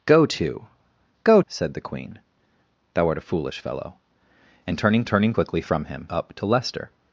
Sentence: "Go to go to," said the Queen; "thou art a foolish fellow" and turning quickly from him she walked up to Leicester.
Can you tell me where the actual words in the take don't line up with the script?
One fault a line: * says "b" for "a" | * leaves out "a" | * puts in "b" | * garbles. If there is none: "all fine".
* leaves out "to"
* puts in "turning"
* leaves out "she walked"